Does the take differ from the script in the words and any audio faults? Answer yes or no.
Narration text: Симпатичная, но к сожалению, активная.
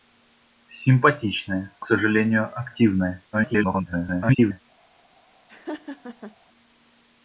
yes